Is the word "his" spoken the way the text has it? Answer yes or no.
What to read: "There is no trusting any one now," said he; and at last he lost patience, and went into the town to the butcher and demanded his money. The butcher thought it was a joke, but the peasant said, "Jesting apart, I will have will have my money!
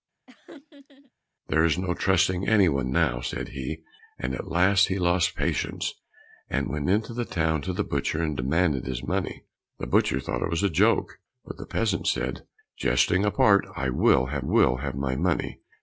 yes